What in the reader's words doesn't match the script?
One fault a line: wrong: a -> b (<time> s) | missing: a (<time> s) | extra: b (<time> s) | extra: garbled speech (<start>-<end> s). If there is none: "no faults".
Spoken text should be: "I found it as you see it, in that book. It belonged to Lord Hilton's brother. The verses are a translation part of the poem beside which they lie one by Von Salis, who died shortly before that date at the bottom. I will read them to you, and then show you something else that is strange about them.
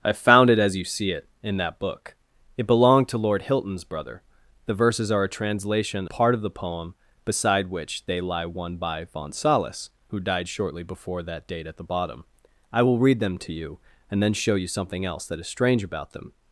no faults